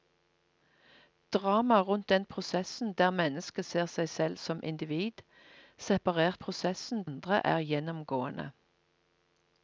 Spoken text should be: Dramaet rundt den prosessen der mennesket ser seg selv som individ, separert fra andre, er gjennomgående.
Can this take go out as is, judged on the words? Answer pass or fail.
fail